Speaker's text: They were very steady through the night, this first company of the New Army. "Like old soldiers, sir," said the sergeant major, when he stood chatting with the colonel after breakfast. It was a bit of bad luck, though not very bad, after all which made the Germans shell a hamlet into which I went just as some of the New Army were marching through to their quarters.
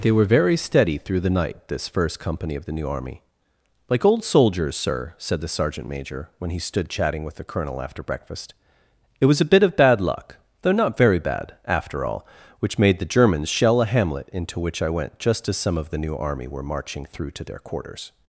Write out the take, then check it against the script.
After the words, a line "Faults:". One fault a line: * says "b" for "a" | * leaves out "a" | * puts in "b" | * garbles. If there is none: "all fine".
They were very steady through the night, this first company of the New Army. "Like old soldiers, sir," said the sergeant major, when he stood chatting with the colonel after breakfast. It was a bit of bad luck, though not very bad, after all which made the Germans shell a hamlet into which I went just as some of the New Army were marching through to their quarters.
Faults:
all fine